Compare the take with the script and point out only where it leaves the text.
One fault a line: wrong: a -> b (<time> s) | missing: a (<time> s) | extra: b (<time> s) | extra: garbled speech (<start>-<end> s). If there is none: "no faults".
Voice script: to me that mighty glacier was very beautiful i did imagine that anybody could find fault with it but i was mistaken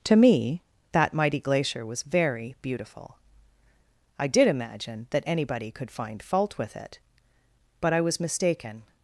no faults